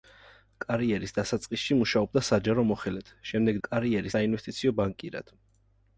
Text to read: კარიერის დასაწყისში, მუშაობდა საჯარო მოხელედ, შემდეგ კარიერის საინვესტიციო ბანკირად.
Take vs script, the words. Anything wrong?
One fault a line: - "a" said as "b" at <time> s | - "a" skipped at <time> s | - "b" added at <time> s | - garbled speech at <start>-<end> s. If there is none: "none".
none